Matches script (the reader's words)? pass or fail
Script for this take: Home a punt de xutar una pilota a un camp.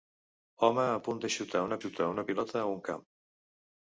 fail